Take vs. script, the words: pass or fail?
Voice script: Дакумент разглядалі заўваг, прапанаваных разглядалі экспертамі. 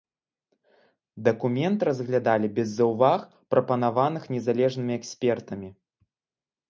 fail